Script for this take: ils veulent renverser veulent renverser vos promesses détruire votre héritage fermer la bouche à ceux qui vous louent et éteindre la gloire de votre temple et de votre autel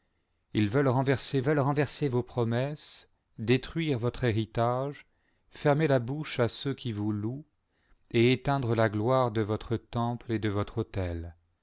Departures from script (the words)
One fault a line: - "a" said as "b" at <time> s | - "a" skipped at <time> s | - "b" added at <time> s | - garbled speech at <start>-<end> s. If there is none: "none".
none